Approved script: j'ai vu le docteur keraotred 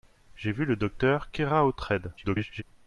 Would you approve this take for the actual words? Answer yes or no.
no